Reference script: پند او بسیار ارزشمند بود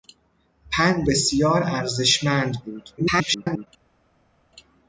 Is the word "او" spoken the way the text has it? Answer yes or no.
no